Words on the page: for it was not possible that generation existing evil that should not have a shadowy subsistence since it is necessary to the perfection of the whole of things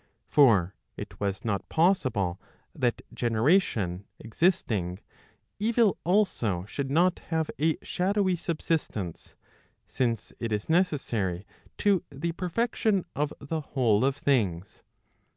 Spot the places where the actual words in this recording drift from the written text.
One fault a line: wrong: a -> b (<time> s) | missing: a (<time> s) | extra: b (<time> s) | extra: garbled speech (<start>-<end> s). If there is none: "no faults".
wrong: that -> also (6.0 s)